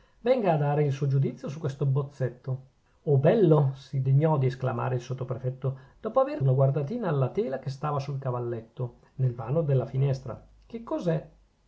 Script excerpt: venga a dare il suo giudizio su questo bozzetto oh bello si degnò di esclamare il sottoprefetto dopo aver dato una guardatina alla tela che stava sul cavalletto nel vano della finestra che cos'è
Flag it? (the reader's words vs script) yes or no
yes